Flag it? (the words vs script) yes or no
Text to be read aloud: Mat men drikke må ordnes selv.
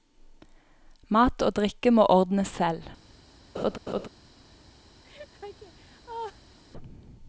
yes